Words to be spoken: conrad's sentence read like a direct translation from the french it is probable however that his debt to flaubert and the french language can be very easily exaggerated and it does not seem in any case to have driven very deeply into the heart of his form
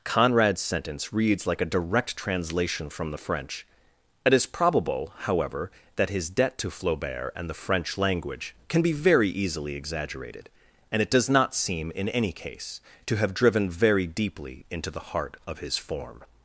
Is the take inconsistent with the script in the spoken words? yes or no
yes